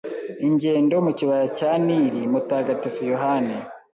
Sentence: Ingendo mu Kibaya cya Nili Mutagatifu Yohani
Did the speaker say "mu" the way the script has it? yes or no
yes